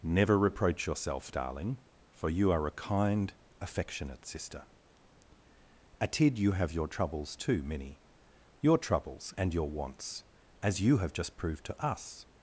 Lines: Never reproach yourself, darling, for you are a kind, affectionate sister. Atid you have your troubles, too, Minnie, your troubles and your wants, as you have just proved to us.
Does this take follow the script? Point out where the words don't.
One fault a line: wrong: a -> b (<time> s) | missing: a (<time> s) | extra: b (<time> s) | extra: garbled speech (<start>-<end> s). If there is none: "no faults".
no faults